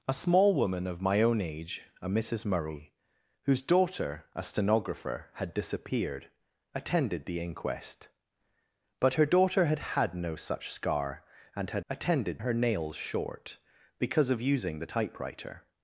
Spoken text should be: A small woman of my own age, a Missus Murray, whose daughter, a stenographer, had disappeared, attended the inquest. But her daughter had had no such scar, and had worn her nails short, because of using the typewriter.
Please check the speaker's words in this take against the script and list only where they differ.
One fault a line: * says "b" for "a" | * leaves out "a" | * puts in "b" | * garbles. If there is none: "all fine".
* says "attended" for "worn"